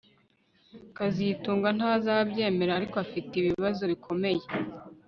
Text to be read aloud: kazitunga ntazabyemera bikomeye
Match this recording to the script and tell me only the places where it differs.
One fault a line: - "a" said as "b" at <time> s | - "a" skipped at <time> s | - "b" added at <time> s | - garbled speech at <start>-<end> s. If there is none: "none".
- "ariko afite ibibazo" added at 2.8 s